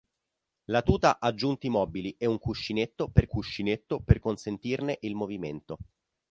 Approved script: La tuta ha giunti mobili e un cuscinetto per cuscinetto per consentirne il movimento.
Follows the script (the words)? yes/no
yes